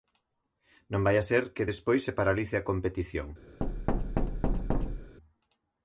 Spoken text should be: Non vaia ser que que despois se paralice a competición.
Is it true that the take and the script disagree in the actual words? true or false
true